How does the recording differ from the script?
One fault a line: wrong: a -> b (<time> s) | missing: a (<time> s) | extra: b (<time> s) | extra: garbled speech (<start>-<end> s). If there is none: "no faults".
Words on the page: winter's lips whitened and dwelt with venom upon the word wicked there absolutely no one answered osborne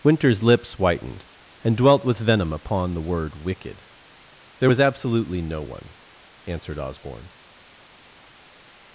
extra: was (4.7 s)